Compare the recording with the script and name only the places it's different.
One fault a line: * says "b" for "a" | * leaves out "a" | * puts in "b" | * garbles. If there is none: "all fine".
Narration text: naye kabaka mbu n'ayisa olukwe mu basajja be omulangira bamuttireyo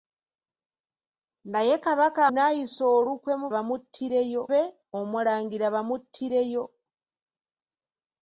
* leaves out "mbu"
* says "bamuttireyo" for "basajja"